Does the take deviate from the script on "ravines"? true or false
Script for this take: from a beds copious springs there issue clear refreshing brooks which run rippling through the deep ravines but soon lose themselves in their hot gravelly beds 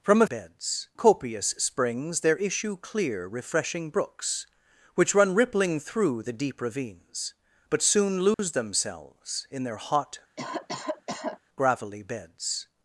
false